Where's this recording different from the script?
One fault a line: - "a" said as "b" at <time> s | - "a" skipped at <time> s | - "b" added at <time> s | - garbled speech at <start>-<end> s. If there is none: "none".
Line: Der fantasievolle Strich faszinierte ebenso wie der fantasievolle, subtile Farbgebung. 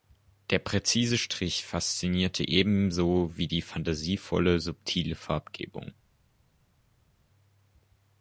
- "fantasievolle" said as "präzise" at 0.6 s
- "der" said as "die" at 3.4 s